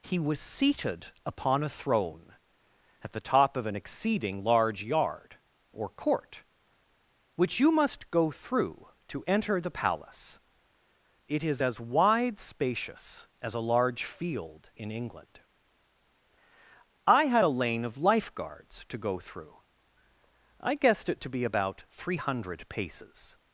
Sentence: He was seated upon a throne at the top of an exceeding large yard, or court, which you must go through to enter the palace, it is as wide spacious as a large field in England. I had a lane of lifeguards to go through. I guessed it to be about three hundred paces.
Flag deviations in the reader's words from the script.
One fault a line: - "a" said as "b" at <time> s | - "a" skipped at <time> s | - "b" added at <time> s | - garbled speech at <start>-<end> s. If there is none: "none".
none